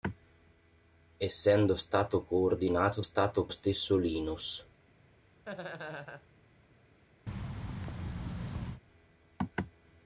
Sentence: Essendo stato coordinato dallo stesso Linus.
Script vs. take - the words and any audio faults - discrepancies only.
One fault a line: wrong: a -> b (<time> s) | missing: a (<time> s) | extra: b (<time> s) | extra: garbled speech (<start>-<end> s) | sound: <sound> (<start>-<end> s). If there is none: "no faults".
wrong: dallo -> stato (3.0 s)
sound: laugh (5.5-6.3 s)
sound: thud (7.3-8.8 s)